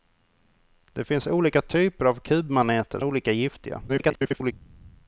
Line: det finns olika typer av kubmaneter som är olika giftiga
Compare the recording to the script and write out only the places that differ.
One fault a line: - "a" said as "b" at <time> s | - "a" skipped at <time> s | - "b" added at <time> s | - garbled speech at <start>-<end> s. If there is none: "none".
- "som är" skipped at 3.0 s
- garbled speech at 3.9-4.5 s